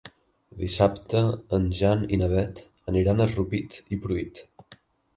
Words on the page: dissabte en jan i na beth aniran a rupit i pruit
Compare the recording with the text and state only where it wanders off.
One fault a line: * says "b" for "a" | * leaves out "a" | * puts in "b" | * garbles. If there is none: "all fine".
all fine